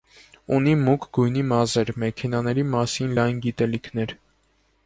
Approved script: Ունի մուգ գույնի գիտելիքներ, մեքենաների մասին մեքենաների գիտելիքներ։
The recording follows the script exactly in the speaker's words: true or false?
false